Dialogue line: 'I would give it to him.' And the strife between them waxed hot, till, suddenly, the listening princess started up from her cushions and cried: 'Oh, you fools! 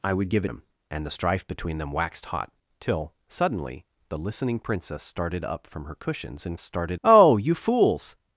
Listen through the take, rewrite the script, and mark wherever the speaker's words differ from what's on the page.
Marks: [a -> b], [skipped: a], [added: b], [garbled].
'I would give [skipped: it to] him.' And the strife between them waxed hot, till, suddenly, the listening princess started up from her cushions and [cried: -> started] 'Oh, you fools!